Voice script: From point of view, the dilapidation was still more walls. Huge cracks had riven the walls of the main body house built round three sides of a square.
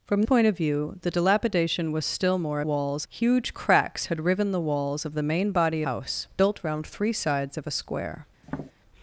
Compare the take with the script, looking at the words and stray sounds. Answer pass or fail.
fail